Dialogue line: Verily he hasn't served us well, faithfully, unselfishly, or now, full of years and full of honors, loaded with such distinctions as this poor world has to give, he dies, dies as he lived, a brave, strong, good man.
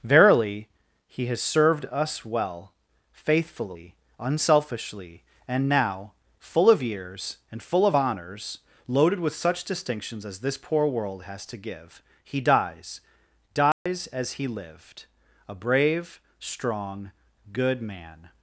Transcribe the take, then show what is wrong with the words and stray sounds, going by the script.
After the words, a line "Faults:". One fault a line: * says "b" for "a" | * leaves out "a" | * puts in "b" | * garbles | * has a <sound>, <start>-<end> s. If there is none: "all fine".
Verily he has served us well, faithfully, unselfishly, and now, full of years and full of honors, loaded with such distinctions as this poor world has to give, he dies, dies as he lived, a brave, strong, good man.
Faults:
* says "has" for "hasn't"
* says "and" for "or"
* has a dropout, 13.7-13.9 s